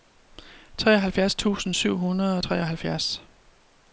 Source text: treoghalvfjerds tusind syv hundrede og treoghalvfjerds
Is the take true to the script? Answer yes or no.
yes